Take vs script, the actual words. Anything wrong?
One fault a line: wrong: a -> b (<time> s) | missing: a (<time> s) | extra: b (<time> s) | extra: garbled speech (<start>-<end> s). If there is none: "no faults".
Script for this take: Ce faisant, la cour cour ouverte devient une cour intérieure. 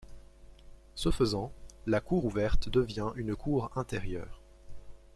missing: cour (2.2 s)